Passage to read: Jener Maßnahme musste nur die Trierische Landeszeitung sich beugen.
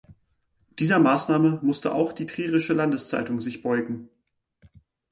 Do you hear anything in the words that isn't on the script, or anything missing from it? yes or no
yes